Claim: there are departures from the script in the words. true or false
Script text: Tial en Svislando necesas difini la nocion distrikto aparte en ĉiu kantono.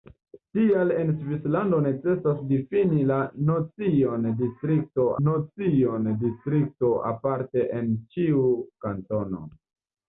true